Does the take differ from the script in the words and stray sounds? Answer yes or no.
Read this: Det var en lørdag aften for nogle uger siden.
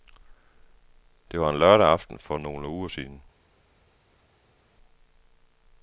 no